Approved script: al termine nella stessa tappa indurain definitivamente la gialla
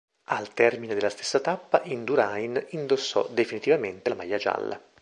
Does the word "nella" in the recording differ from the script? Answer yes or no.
yes